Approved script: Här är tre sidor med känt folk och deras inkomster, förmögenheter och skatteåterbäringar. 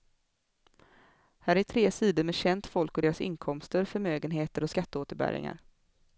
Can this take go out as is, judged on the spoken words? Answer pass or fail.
pass